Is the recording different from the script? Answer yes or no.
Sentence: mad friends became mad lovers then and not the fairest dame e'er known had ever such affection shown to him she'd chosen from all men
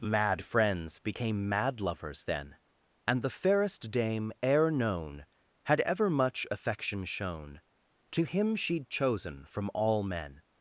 yes